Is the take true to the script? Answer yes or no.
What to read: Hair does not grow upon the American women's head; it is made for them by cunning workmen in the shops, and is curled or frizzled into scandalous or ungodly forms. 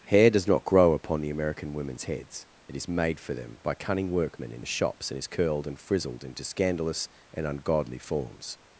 no